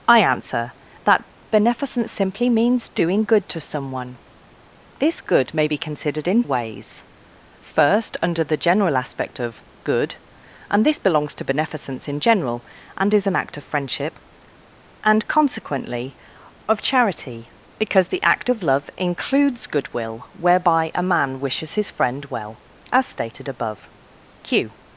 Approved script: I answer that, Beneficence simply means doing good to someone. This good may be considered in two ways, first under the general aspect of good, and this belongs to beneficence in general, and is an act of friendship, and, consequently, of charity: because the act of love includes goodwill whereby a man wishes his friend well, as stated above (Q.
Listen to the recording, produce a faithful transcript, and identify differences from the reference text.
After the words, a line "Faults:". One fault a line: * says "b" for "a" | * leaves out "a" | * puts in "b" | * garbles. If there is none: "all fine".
I answer that, Beneficence simply means doing good to someone. This good may be considered in ways, first under the general aspect of good, and this belongs to beneficence in general, and is an act of friendship, and, consequently, of charity: because the act of love includes goodwill whereby a man wishes his friend well, as stated above (Q.
Faults:
* leaves out "two"